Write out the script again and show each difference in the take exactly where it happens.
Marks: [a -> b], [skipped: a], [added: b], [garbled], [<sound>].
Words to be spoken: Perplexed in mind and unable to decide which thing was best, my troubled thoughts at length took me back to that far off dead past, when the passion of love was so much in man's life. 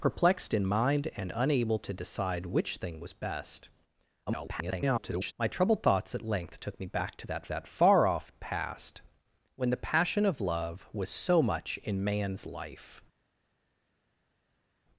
Perplexed in mind and unable to decide which thing was best, [garbled] my troubled thoughts at length took me back to that [added: that] far off [skipped: dead] past, when the passion of love was so much in man's life.